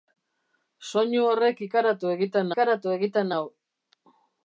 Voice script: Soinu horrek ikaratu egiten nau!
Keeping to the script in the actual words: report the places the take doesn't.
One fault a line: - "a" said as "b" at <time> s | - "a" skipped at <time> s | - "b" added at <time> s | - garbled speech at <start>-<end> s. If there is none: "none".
- "ikaratu egiten" added at 2.5 s